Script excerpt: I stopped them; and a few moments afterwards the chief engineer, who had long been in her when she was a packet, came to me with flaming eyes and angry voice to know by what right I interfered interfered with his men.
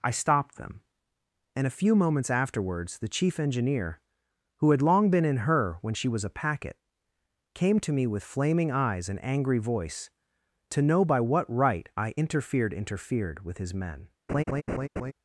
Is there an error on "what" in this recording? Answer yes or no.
no